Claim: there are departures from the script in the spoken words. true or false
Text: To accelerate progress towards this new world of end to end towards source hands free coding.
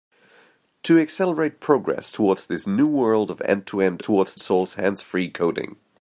false